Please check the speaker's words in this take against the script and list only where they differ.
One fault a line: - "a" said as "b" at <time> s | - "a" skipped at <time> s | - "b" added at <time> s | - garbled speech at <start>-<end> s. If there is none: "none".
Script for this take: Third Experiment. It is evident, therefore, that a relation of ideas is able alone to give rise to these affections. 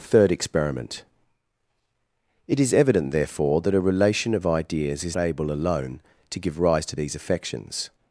none